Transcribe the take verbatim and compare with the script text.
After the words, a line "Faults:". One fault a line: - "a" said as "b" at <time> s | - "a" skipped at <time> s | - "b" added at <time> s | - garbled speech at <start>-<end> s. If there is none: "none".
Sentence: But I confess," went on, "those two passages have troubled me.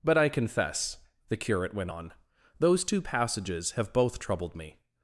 But I confess," the curate went on, "those two passages have both troubled me.
Faults:
- "the curate" added at 1.3 s
- "both" added at 3.9 s